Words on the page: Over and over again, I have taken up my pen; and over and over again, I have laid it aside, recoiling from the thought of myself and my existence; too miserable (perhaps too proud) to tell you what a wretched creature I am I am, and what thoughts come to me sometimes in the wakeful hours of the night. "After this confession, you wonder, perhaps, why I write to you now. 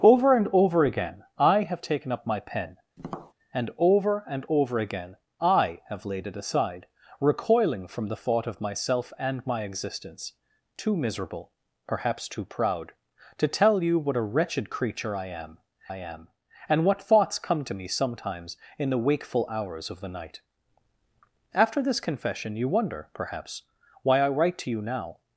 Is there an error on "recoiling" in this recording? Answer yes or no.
no